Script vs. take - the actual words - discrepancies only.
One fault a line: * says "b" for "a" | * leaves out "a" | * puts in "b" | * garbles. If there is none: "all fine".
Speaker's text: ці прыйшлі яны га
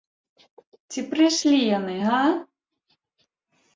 all fine